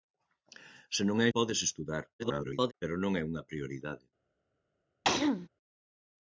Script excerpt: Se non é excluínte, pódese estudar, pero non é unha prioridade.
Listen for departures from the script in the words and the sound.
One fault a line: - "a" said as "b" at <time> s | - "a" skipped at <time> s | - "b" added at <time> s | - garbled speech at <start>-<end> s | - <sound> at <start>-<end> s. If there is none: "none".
- "excluínte" skipped at 1.3 s
- garbled speech at 2.2-2.7 s
- throat clearing at 5.0-5.5 s